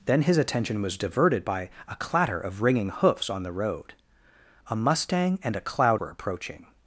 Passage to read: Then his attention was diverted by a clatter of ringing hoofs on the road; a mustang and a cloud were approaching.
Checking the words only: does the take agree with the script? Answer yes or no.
yes